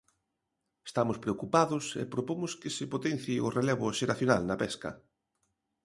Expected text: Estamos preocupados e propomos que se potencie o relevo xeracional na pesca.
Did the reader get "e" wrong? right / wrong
right